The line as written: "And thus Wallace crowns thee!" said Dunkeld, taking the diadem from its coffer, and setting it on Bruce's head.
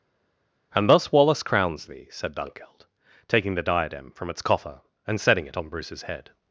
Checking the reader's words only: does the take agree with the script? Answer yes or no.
yes